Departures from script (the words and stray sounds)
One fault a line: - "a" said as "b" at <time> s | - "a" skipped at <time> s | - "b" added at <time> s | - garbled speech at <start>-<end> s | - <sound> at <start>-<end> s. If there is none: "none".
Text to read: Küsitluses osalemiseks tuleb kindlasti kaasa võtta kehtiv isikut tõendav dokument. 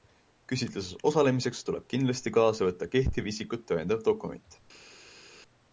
none